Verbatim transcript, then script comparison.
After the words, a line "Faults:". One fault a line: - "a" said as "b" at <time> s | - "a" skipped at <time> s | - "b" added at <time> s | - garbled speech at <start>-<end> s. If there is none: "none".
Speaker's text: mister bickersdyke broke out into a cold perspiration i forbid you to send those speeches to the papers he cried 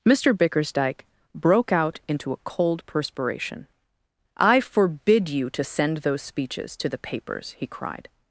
mister bickersdyke broke out into a cold perspiration i forbid you to send those speeches to the papers he cried
Faults:
none